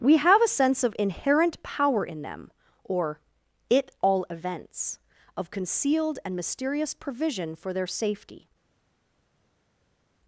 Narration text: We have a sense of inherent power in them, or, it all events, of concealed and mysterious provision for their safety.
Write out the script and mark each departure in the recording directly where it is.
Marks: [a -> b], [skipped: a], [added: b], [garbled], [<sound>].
We have a sense of inherent power in them, or, it all events, of concealed and mysterious provision for their safety.